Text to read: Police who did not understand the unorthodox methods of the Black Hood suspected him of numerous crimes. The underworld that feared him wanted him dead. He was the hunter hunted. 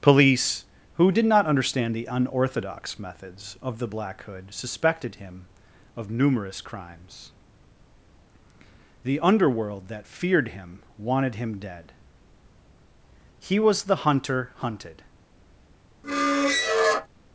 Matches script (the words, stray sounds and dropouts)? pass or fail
fail